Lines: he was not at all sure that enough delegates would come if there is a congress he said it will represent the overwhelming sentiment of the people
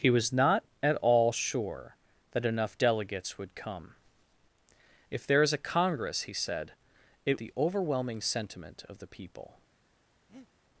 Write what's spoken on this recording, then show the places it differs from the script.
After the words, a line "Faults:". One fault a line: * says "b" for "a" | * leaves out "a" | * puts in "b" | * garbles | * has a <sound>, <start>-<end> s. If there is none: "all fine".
he was not at all sure that enough delegates would come if there is a congress he said it the overwhelming sentiment of the people
Faults:
* leaves out "will represent"
* has a breath, 10.3-10.5 s